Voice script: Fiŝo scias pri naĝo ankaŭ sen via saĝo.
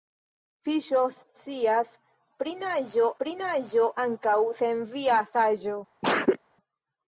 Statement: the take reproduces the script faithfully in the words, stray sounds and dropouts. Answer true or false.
false